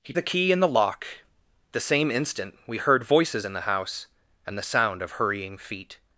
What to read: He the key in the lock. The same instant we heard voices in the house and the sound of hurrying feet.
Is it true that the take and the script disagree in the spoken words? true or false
false